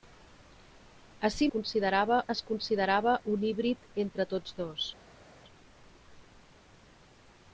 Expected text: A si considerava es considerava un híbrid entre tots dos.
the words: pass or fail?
pass